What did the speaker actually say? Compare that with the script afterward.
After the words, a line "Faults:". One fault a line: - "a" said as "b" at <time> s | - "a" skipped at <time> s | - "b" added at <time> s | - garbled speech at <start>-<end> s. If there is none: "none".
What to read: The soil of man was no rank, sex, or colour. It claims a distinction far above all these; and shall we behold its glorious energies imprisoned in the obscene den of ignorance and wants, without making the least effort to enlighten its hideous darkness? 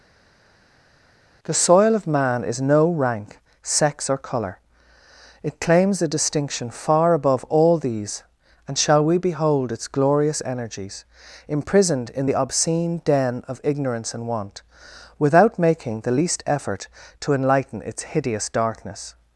The soil of man is no rank, sex, or colour. It claims a distinction far above all these; and shall we behold its glorious energies imprisoned in the obscene den of ignorance and want, without making the least effort to enlighten its hideous darkness?
Faults:
- "was" said as "is" at 2.4 s
- "wants" said as "want" at 14.3 s